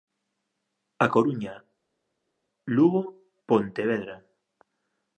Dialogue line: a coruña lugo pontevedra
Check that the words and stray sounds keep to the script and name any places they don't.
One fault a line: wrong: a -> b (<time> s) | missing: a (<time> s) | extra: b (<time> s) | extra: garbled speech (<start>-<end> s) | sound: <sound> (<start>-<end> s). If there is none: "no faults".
no faults